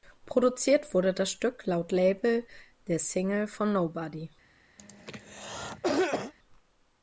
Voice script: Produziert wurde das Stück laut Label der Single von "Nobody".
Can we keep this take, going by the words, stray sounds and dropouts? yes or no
no